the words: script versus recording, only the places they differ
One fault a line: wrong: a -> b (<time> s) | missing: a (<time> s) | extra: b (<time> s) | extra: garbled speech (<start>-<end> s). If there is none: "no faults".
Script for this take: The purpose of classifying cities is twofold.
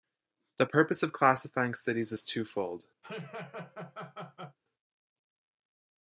no faults